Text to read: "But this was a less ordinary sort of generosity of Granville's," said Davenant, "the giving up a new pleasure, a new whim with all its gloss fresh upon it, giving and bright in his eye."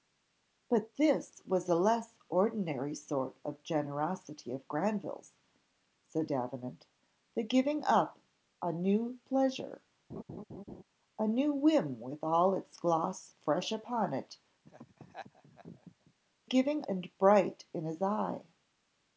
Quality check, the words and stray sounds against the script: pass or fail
fail